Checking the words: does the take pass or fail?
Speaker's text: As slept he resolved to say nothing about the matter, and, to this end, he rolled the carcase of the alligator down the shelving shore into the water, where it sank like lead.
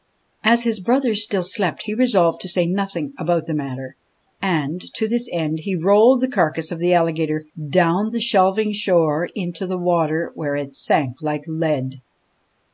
fail